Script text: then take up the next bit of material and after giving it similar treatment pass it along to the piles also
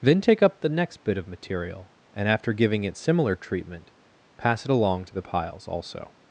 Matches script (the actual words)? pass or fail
pass